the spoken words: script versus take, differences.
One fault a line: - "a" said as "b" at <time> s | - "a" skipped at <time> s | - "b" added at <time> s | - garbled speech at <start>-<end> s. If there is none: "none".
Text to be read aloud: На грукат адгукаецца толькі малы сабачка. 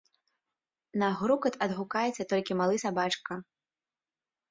none